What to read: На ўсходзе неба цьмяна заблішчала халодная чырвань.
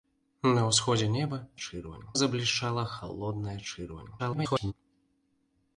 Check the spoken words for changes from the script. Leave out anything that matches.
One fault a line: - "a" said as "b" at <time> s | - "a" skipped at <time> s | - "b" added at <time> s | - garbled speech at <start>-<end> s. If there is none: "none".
- "цьмяна" said as "чырвань" at 1.6 s
- garbled speech at 4.2-4.7 s